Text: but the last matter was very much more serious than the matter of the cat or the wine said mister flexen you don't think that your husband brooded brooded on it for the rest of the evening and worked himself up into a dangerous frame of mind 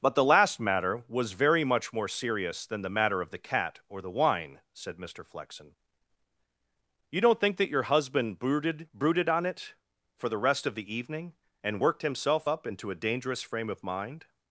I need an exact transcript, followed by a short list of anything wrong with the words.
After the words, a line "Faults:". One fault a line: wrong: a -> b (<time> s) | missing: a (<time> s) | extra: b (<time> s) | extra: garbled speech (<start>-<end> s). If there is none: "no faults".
but the last matter was very much more serious than the matter of the cat or the wine said mister flexen you don't think that your husband brooded brooded on it for the rest of the evening and worked himself up into a dangerous frame of mind
Faults:
no faults